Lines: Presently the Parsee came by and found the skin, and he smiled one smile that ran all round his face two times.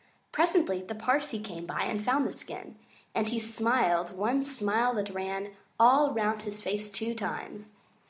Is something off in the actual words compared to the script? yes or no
no